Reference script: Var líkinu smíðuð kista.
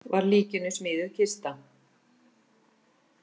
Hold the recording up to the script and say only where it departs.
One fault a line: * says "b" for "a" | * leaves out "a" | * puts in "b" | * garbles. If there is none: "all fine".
all fine